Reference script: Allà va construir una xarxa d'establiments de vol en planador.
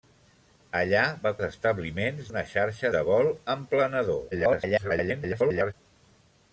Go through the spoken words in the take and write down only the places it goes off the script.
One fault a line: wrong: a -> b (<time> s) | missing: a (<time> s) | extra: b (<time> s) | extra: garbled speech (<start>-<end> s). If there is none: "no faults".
wrong: construir -> d'establiments (1.4 s)
missing: d'establiments (2.9 s)
extra: garbled speech (4.3-5.7 s)